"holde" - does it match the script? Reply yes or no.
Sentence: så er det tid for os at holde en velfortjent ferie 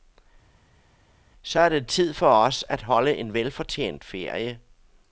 yes